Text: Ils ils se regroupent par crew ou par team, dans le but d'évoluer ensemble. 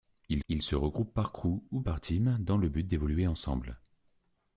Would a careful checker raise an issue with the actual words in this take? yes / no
no